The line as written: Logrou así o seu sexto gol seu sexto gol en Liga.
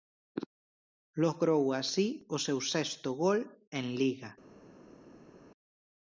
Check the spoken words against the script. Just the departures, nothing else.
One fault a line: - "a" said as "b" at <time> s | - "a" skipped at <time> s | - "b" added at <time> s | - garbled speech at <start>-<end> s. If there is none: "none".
- "seu sexto gol" skipped at 3.4 s